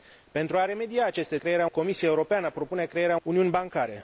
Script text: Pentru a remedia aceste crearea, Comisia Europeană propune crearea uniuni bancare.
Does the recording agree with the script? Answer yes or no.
yes